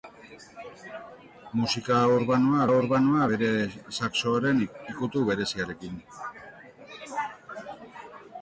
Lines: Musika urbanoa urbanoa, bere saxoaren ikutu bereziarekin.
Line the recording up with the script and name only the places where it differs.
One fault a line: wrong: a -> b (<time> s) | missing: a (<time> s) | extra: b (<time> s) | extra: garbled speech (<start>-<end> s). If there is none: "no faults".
no faults